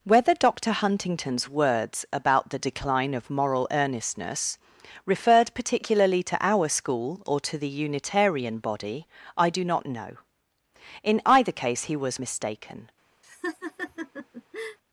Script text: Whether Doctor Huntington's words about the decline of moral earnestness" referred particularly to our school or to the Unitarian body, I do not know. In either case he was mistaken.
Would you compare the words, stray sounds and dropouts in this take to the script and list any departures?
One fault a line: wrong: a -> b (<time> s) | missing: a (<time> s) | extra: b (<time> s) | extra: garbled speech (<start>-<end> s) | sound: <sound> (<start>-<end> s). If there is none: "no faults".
sound: laugh (13.2-14.8 s)